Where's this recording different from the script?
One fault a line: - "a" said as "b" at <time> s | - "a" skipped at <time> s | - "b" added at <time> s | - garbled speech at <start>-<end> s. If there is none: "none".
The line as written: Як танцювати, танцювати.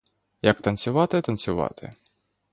none